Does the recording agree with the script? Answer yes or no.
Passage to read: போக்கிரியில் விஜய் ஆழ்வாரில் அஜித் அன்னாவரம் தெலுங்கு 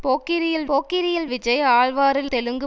no